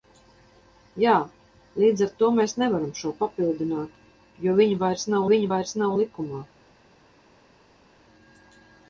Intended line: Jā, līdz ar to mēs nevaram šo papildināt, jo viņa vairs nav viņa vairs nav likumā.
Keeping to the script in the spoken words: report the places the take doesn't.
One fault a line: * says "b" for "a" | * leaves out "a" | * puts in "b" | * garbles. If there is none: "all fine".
all fine